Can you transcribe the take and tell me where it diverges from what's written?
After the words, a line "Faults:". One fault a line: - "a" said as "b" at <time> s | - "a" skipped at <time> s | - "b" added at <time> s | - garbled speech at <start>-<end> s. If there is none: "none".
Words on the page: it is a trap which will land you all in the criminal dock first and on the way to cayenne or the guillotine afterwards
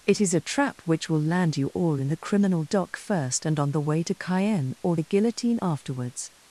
it is a trap which will land you all in the criminal dock first and on the way to cayenne or the guillotine afterwards
Faults:
none